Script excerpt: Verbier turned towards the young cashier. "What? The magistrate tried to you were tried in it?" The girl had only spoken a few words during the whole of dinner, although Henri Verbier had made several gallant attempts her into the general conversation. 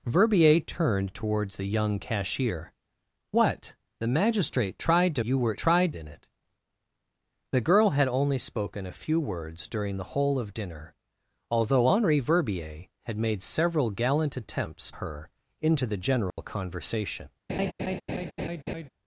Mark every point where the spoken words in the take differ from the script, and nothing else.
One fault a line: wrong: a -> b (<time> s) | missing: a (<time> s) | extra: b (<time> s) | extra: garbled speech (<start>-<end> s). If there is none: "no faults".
no faults